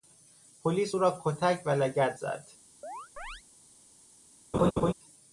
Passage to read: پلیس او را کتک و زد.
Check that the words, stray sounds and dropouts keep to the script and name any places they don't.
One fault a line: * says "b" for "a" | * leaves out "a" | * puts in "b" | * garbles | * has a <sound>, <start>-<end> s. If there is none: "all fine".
* puts in "لگد"
* has a chirp, 2.8-3.4 s
* has a laugh, 4.5-4.9 s